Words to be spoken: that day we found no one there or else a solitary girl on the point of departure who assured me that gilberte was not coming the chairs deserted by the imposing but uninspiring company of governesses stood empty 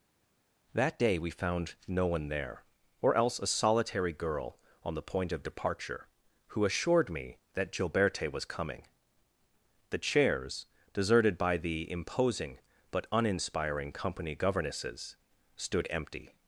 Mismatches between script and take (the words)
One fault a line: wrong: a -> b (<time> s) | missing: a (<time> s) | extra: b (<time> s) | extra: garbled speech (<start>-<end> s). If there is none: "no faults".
missing: not (8.4 s)
missing: of (14.3 s)